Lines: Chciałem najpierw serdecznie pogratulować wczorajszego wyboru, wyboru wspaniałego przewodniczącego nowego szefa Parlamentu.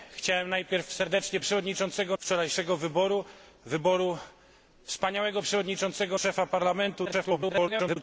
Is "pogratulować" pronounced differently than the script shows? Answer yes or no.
yes